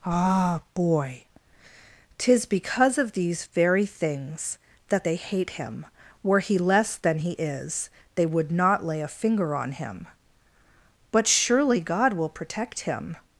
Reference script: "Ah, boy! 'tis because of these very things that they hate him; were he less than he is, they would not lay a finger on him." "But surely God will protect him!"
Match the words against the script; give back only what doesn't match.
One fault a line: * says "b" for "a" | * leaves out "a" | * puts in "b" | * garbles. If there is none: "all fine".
all fine